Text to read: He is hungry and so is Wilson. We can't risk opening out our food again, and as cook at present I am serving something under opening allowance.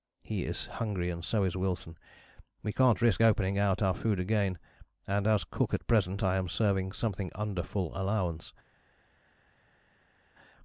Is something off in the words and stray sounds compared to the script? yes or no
yes